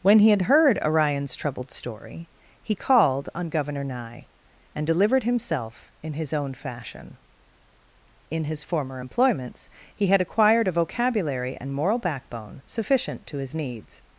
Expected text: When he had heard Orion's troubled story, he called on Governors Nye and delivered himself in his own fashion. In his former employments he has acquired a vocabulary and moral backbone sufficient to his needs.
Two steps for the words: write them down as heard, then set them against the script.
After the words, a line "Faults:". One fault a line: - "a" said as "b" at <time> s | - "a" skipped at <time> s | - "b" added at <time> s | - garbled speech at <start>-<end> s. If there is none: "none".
When he had heard Orion's troubled story, he called on Governor Nye and delivered himself in his own fashion. In his former employments he had acquired a vocabulary and moral backbone sufficient to his needs.
Faults:
- "Governors" said as "Governor" at 3.5 s
- "has" said as "had" at 10.1 s